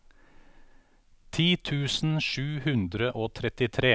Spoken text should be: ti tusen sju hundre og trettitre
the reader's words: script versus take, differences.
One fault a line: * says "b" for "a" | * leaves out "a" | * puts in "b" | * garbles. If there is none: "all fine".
all fine